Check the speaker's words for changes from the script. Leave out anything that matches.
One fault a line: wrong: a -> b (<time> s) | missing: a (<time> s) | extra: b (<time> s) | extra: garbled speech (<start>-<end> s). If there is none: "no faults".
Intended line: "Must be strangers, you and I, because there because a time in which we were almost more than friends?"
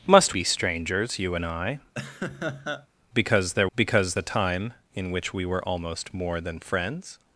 no faults